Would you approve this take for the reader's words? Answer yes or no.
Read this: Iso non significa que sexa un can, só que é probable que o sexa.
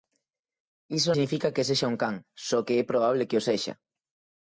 no